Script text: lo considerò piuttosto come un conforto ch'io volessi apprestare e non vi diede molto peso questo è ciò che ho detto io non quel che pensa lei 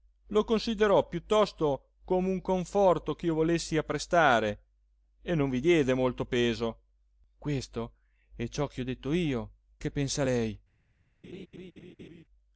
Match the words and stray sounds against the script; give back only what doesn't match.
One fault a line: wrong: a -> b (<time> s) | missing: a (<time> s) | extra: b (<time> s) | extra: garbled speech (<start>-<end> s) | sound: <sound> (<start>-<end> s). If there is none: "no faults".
missing: non quel (9.5 s)
sound: laugh (11.2-12.2 s)